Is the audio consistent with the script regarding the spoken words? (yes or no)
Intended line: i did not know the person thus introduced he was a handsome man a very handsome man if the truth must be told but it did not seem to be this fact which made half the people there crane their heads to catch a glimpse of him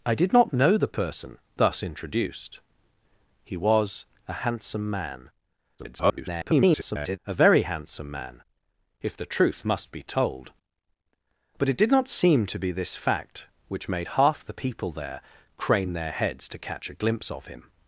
no